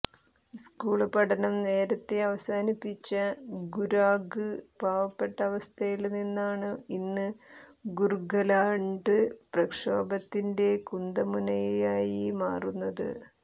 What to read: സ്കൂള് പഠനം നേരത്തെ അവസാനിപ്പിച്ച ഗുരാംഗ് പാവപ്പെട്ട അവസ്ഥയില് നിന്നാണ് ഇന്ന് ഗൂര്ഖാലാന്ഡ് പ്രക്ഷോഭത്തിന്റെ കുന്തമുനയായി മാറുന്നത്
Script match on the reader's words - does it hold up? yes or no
yes